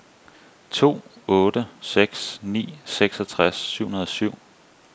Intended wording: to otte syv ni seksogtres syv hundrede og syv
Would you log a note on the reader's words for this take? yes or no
yes